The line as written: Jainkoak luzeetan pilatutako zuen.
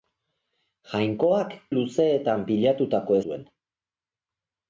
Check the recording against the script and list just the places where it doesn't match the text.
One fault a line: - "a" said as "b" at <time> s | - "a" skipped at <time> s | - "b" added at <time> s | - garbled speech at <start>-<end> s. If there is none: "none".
none